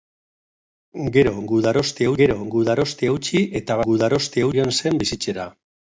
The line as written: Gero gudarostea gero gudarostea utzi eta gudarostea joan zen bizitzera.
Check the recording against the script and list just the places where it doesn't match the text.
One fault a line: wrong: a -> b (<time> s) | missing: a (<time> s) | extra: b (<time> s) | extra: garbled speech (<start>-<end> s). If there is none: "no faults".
no faults